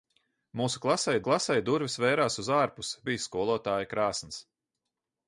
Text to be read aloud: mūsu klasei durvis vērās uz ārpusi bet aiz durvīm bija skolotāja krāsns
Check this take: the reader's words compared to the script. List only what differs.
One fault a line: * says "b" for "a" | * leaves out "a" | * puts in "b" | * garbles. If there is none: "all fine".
* puts in "klasei"
* leaves out "bet aiz durvīm"